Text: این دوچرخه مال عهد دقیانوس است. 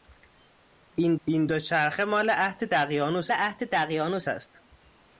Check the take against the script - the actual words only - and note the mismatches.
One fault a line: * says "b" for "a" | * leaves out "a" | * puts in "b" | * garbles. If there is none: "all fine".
* puts in "این"
* puts in "عهد دقیانوس"